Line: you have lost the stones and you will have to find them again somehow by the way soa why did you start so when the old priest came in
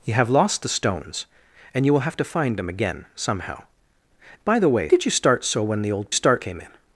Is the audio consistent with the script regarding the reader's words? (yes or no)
no